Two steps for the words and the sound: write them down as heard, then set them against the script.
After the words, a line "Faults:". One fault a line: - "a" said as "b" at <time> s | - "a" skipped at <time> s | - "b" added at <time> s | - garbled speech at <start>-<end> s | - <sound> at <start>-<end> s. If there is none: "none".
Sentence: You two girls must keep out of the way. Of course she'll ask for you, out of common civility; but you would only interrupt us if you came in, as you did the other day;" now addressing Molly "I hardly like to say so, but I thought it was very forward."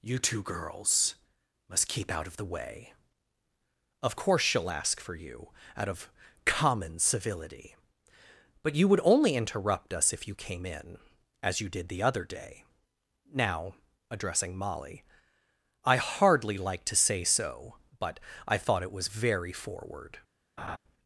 You two girls must keep out of the way. Of course she'll ask for you, out of common civility; but you would only interrupt us if you came in, as you did the other day;" now addressing Molly "I hardly like to say so, but I thought it was very forward."
Faults:
- laugh at 20.6-20.8 s